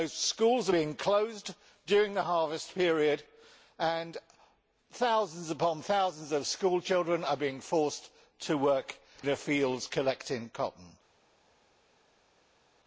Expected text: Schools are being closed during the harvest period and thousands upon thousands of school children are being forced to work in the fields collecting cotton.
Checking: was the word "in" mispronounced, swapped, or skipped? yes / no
yes